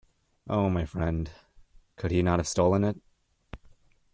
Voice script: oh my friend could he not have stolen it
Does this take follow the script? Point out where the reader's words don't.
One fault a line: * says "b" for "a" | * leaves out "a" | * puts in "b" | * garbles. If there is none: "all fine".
all fine